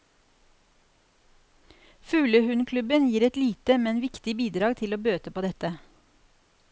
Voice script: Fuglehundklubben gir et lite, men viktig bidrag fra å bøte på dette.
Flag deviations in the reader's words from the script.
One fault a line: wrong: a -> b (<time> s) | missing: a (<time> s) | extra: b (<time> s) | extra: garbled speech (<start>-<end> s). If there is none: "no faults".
wrong: fra -> til (4.8 s)